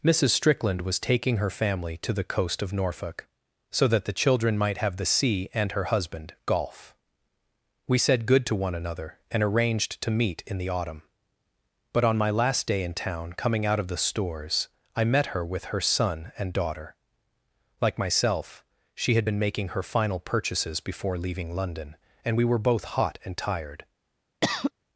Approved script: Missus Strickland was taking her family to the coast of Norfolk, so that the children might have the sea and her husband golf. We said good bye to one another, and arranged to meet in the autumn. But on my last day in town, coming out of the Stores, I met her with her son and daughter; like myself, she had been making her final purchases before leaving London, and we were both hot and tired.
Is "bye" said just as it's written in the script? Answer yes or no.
no